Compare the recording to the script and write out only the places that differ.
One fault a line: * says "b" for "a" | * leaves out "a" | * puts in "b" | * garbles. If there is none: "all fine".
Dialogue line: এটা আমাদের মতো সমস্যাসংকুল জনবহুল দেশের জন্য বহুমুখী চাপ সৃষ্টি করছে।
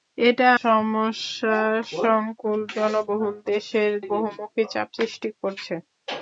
* leaves out "আমাদের মতো"
* leaves out "জন্য"